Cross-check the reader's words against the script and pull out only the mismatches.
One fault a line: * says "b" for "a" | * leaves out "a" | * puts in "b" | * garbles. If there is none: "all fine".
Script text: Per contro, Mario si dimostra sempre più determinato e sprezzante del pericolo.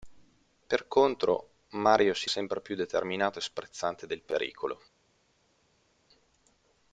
* leaves out "dimostra"